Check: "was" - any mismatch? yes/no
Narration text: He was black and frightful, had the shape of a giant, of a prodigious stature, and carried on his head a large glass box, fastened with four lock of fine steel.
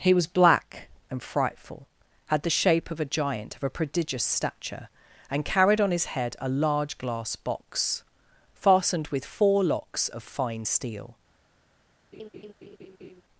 no